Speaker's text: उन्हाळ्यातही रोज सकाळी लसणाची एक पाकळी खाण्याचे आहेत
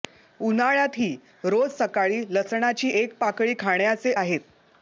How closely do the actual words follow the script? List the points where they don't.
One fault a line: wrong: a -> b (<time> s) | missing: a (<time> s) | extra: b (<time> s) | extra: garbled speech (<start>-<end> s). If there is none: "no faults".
no faults